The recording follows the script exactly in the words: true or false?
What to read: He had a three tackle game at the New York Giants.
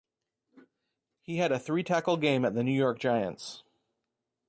true